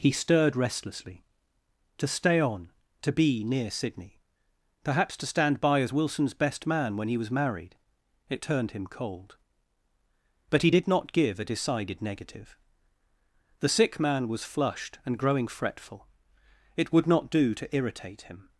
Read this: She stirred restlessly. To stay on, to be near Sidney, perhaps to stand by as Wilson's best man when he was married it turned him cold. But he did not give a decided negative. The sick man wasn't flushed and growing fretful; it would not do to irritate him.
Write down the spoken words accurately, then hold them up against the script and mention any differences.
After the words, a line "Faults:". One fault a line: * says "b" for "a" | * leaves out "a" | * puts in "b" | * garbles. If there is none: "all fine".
He stirred restlessly. To stay on, to be near Sidney, perhaps to stand by as Wilson's best man when he was married it turned him cold. But he did not give a decided negative. The sick man was flushed and growing fretful; it would not do to irritate him.
Faults:
* says "He" for "She"
* says "was" for "wasn't"